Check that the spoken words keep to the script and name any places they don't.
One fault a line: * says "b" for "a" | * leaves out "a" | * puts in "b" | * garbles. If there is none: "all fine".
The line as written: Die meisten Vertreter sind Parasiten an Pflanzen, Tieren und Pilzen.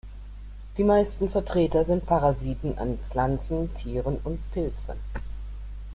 all fine